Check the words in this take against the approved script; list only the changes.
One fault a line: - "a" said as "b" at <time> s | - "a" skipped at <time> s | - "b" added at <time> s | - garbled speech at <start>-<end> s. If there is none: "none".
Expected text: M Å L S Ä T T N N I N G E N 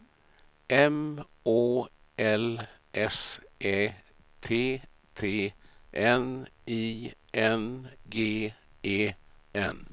- "N" skipped at 6.5 s